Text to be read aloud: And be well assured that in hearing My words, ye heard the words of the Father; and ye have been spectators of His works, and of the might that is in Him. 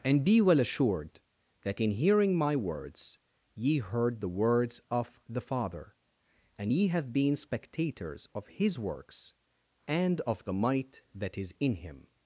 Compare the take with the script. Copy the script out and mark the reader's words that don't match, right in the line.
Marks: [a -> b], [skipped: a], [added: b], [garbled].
And be well assured that in hearing My words, ye heard the words of the Father; and ye have been spectators of His works, and of the might that is in Him.